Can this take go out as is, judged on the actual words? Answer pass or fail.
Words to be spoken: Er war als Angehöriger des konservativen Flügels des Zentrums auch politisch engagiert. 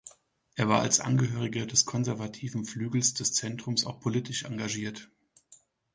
pass